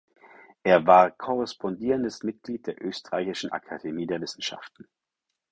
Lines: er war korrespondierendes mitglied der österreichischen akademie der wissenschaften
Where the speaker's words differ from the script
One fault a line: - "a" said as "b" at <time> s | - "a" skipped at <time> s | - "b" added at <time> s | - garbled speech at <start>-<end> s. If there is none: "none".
none